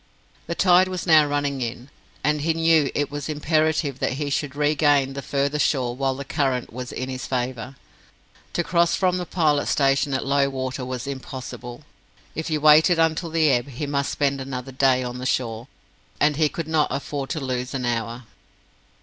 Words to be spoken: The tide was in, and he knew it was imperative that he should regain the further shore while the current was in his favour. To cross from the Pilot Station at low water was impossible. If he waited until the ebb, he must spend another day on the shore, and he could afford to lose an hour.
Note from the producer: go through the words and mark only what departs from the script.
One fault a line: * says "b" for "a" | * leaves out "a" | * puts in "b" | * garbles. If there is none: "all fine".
* puts in "now running"
* puts in "not"